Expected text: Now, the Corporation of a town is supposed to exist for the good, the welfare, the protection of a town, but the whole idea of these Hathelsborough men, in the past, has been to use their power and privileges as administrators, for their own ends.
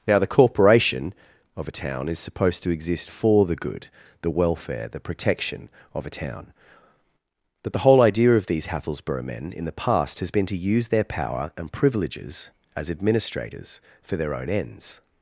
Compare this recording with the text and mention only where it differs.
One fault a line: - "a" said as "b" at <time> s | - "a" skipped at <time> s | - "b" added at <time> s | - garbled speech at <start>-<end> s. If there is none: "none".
none